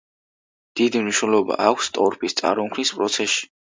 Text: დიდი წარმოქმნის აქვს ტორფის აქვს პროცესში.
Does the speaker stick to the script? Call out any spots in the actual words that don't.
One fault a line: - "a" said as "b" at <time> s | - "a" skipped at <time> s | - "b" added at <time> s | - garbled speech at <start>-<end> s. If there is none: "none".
- "წარმოქმნის" said as "მნიშვნელობა" at 1.0 s
- "აქვს" said as "წარმოქმნის" at 2.4 s